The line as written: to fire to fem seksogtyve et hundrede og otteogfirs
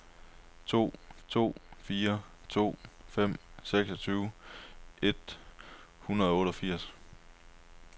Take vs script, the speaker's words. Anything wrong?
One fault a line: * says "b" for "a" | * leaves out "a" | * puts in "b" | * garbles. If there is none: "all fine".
* puts in "to"